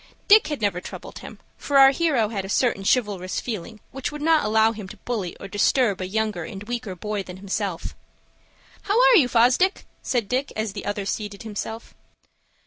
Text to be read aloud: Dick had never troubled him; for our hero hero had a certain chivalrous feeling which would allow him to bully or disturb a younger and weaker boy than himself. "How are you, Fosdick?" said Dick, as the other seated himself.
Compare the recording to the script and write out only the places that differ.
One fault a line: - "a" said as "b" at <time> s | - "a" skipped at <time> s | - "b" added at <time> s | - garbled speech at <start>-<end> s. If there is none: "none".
- "hero" skipped at 2.3 s
- "not" added at 4.2 s